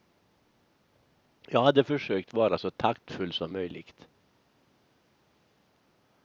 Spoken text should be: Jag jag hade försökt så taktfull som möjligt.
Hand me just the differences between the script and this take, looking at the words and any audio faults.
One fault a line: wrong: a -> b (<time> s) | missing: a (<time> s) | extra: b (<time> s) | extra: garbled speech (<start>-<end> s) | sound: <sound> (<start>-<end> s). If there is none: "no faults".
missing: jag (1.6 s)
extra: vara (2.3 s)